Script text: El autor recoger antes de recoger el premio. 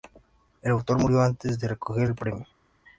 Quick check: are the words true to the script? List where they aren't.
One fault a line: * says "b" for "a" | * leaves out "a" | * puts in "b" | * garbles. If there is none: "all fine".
* says "murió" for "recoger"